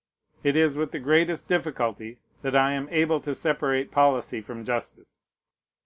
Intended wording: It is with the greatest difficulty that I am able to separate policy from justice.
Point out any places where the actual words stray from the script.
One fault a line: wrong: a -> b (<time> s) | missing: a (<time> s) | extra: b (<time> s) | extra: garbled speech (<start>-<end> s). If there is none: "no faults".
no faults